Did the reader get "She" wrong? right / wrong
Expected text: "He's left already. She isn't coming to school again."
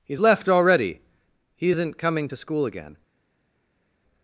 wrong